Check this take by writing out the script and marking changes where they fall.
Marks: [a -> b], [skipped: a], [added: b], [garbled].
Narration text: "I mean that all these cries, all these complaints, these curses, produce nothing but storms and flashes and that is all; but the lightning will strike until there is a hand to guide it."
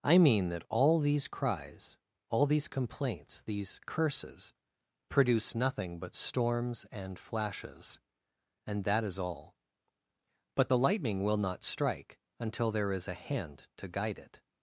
"I mean that all these cries, all these complaints, these curses, produce nothing but storms and flashes and that is all; but the lightning will [added: not] strike until there is a hand to guide it."